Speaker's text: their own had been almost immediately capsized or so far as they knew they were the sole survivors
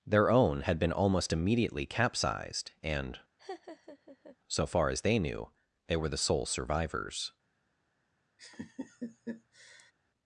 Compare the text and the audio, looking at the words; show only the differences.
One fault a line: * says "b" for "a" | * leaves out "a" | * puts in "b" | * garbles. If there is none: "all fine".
* says "and" for "or"